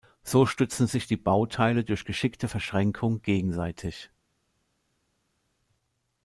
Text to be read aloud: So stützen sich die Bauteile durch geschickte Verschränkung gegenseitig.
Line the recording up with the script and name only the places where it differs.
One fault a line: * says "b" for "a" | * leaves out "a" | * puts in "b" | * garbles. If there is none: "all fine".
all fine